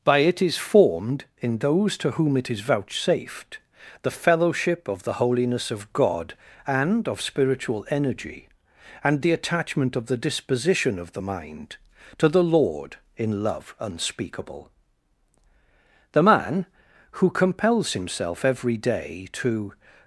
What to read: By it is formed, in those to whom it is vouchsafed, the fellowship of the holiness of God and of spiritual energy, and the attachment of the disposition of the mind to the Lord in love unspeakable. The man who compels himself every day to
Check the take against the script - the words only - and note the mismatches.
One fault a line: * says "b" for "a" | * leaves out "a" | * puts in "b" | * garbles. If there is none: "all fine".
all fine